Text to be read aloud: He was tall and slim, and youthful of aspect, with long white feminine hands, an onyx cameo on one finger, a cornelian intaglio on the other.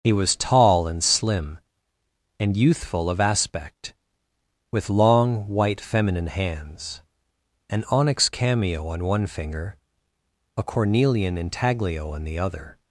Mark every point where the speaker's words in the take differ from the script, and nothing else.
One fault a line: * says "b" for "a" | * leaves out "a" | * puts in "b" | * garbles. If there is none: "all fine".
all fine